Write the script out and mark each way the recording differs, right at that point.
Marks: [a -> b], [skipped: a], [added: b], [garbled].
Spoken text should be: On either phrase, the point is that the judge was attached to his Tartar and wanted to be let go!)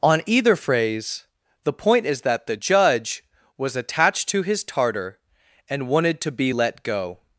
On either phrase, the point is that the judge was attached to his Tartar and wanted to be let go!)